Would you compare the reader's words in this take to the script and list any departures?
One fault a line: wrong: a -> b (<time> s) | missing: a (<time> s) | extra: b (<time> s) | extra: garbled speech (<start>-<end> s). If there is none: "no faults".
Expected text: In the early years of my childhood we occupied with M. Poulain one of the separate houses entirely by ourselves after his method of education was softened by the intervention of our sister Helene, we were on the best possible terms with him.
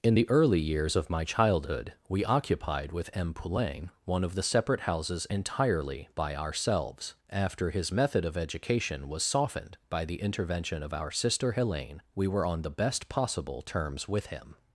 no faults